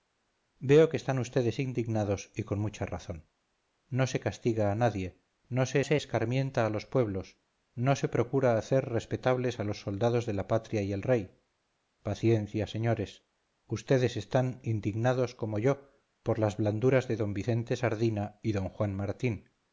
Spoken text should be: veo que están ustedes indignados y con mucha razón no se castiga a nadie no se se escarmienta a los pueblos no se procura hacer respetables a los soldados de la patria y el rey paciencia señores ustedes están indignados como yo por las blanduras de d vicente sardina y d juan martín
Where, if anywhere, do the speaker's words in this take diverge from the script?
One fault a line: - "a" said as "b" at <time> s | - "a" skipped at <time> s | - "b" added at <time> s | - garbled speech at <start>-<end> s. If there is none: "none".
none